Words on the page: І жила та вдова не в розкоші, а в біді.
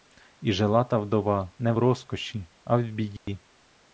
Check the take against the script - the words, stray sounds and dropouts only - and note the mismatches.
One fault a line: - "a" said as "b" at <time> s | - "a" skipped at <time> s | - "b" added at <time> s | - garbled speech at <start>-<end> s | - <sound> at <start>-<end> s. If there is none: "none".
- dropout at 3.2-3.3 s